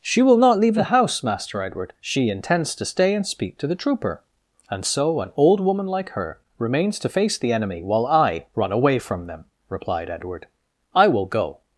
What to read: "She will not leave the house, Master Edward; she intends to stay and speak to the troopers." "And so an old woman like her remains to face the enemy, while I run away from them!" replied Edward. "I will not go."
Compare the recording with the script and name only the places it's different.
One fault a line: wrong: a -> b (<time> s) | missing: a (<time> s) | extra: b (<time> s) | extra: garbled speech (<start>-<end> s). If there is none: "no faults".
wrong: troopers -> trooper (3.8 s)
missing: not (11.2 s)